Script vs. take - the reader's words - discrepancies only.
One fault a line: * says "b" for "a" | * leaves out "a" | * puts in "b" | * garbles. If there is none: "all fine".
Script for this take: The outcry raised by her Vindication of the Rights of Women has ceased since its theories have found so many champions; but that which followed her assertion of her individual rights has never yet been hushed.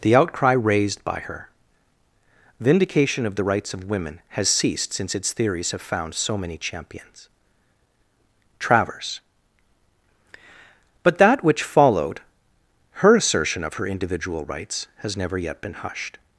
* puts in "travers"